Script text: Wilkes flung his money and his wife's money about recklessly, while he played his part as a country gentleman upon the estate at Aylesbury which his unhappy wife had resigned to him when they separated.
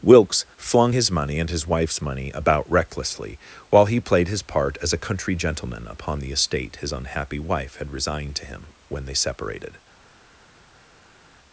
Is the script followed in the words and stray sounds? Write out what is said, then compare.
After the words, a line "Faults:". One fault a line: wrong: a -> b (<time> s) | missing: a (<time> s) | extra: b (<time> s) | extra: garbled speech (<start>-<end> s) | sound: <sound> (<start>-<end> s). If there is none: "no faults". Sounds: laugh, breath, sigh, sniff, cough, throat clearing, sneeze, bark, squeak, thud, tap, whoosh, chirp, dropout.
Wilkes flung his money and his wife's money about recklessly, while he played his part as a country gentleman upon the estate his unhappy wife had resigned to him when they separated.
Faults:
missing: at Aylesbury which (6.8 s)